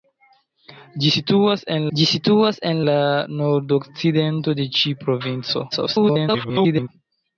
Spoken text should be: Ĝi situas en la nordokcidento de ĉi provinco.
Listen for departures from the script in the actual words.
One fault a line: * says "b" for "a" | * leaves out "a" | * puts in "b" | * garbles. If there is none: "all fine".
* puts in "ĝi situas en"
* garbles